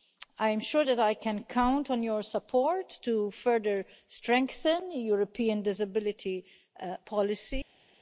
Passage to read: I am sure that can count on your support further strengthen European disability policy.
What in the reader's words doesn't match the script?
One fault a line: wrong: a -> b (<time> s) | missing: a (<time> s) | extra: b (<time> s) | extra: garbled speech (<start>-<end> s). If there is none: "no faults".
extra: I (1.0 s)
extra: to (3.0 s)